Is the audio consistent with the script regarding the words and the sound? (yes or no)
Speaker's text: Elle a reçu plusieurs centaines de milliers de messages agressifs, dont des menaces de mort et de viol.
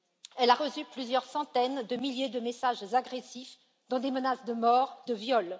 no